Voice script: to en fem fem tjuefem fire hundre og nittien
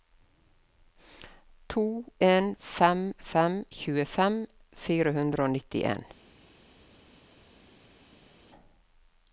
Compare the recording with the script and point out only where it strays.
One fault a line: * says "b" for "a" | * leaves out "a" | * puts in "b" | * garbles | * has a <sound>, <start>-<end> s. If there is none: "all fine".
all fine